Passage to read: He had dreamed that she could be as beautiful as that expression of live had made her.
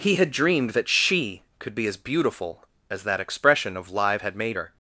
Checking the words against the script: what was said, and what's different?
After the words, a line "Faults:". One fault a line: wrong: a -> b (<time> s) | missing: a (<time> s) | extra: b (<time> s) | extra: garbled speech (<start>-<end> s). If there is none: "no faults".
He had dreamed that she could be as beautiful as that expression of live had made her.
Faults:
no faults